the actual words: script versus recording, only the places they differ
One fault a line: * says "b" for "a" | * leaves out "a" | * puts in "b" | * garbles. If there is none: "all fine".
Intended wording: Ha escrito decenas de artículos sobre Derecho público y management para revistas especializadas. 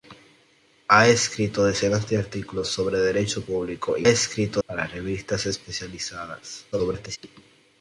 * says "escrito" for "management"
* garbles